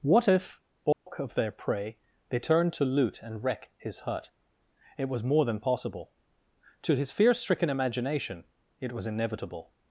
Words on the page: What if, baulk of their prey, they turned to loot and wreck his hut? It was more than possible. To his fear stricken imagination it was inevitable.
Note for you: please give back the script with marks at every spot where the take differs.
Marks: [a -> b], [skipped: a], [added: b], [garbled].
What if, baulk of their prey, they turned to loot and wreck his hut? It was more than possible. To his fear stricken imagination it was inevitable.